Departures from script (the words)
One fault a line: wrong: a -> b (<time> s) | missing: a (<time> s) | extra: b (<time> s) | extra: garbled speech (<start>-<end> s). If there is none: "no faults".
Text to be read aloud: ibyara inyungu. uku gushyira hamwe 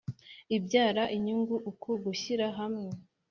no faults